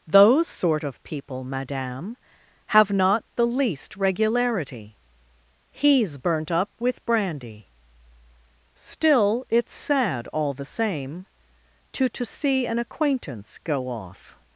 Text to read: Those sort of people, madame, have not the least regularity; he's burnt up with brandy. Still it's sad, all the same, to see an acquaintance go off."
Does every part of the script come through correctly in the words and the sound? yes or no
no